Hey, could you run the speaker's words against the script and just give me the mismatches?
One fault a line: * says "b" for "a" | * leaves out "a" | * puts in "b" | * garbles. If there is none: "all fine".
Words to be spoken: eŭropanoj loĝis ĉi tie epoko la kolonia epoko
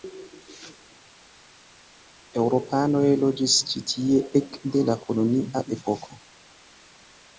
* says "ekde" for "epoko"